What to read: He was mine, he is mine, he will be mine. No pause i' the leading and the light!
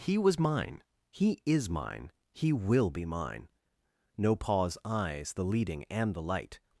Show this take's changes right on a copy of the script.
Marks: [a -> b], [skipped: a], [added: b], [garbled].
He was mine, he is mine, he will be mine. No pause [i' -> eyes] the leading and the light!